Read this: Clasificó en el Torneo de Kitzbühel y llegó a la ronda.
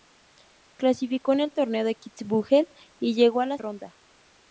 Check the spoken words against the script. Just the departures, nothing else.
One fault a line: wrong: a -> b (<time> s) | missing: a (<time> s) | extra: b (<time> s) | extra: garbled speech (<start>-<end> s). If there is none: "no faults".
no faults